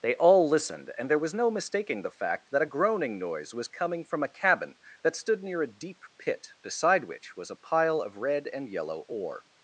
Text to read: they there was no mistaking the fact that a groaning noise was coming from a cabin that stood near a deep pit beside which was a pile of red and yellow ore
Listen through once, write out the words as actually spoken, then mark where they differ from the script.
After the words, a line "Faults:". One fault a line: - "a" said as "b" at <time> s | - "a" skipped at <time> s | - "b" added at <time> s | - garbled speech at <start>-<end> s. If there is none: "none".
they all listened and there was no mistaking the fact that a groaning noise was coming from a cabin that stood near a deep pit beside which was a pile of red and yellow ore
Faults:
- "all listened and" added at 0.1 s